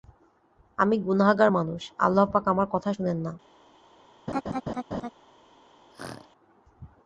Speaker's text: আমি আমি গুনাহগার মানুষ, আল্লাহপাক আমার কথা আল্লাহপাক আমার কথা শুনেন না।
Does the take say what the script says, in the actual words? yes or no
no